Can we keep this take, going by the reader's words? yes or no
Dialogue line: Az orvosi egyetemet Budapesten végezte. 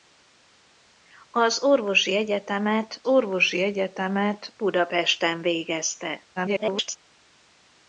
no